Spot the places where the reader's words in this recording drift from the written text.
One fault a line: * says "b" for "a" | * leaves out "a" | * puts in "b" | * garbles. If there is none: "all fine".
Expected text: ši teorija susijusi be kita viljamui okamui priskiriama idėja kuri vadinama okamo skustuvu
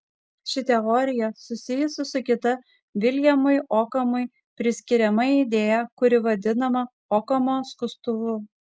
* says "su" for "be"